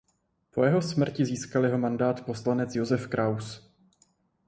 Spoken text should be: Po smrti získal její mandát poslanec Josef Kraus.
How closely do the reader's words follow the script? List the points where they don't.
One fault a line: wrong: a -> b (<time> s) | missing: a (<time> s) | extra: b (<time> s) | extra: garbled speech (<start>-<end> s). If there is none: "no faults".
extra: jeho (0.6 s)
wrong: její -> jeho (1.6 s)